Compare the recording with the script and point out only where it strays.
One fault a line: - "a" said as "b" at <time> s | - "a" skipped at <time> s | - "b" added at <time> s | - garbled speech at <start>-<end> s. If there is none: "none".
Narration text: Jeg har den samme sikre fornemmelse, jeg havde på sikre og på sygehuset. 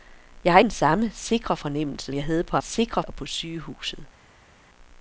none